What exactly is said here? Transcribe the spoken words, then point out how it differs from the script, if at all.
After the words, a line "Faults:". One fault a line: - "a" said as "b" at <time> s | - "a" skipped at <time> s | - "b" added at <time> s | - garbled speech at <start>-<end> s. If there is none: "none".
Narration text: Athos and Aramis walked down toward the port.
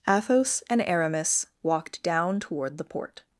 Athos and Aramis walked down toward the port.
Faults:
none